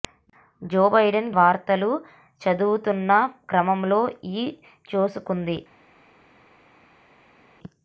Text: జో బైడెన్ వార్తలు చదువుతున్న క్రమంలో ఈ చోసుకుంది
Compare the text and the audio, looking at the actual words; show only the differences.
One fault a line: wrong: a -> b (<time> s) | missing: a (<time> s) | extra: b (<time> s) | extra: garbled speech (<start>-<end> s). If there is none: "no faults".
no faults